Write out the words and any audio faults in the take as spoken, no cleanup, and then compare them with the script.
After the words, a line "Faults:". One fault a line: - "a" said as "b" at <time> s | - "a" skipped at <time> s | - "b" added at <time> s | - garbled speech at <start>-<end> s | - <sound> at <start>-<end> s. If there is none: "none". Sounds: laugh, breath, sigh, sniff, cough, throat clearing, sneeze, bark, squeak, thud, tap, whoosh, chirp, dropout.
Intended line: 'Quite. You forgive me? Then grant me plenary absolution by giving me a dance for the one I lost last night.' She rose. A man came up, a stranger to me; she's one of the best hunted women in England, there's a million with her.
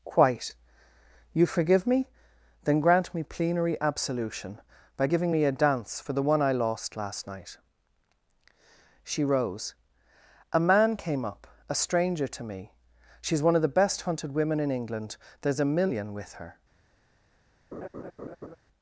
'Quite. You forgive me? Then grant me plenary absolution by giving me a dance for the one I lost last night.' She rose. A man came up, a stranger to me; she's one of the best hunted women in England, there's a million with her.
Faults:
- laugh at 17.7-18.6 s